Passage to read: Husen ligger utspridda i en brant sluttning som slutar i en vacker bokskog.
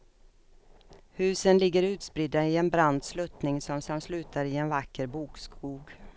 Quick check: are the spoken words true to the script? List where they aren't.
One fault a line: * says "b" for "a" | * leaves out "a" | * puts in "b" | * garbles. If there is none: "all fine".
* puts in "som"